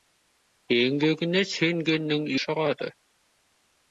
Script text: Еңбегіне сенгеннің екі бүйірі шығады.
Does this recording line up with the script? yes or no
no